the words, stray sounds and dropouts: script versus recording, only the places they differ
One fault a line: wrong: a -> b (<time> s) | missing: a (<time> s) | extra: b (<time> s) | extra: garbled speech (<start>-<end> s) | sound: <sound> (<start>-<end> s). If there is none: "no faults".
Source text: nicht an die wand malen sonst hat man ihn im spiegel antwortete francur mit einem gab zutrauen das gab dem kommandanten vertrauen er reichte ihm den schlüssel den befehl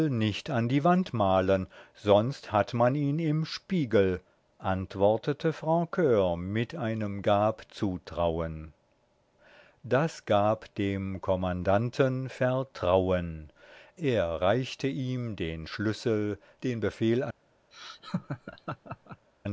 sound: laugh (17.7-19.3 s)